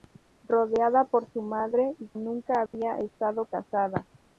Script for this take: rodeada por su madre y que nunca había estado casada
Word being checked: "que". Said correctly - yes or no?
no